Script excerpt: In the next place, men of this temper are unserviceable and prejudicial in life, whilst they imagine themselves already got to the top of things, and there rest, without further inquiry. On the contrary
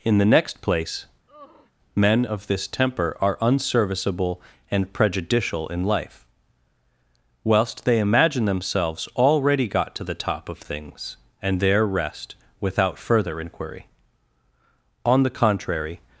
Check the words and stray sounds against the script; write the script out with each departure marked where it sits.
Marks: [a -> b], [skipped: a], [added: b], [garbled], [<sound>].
In the next place, [sigh] men of this temper are unserviceable and prejudicial in life, whilst they imagine themselves already got to the top of things, and there rest, without further inquiry. On the contrary